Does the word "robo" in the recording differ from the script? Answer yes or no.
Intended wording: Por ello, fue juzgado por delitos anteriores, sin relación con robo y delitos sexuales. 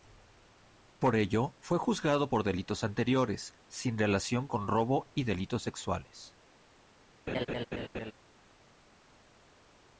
no